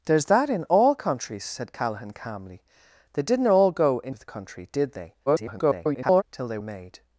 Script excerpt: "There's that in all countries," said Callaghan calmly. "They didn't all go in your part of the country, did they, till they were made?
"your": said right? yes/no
no